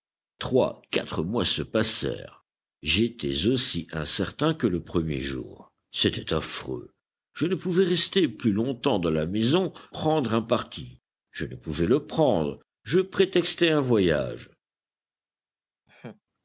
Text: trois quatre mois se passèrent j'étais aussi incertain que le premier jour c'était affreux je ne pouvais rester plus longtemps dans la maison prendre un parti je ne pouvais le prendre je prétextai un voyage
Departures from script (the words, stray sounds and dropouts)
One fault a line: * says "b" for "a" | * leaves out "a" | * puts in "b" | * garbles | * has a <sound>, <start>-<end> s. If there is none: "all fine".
* has a laugh, 15.9-16.2 s